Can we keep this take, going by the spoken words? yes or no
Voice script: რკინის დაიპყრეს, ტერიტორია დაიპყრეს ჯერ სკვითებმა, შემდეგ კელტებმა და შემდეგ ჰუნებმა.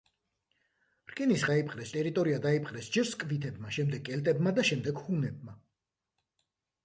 yes